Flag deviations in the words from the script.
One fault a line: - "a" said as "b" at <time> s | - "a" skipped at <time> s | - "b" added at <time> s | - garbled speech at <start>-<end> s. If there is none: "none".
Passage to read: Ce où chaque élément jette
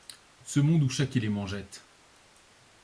- "monde" added at 0.6 s